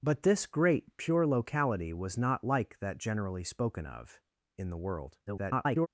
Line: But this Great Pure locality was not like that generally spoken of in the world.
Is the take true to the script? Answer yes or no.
no